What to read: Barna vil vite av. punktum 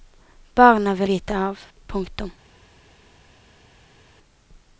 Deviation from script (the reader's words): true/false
false